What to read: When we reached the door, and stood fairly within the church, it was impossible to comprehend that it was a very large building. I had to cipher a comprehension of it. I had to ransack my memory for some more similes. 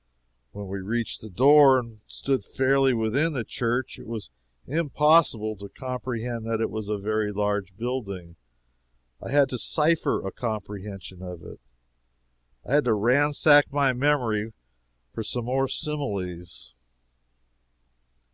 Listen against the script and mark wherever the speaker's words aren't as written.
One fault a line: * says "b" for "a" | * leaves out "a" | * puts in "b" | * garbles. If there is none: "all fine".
all fine